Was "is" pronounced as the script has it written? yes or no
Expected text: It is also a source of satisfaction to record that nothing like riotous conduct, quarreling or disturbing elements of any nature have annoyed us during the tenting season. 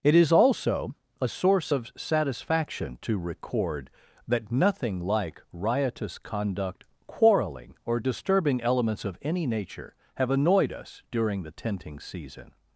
yes